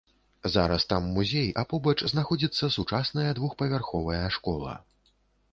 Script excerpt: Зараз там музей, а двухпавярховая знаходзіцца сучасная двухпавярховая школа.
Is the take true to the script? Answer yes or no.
no